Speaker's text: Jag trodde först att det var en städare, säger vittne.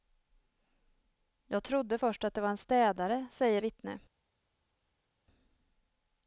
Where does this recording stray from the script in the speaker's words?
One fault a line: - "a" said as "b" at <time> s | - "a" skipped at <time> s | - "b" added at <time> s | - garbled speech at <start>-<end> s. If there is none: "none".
none